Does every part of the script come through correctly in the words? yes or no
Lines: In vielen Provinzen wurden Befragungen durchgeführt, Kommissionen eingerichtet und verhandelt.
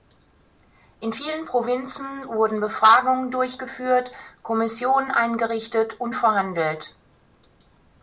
yes